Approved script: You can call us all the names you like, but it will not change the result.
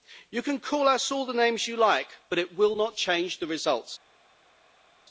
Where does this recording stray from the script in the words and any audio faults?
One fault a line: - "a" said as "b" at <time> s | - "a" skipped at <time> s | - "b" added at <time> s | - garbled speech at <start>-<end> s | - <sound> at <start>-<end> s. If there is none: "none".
none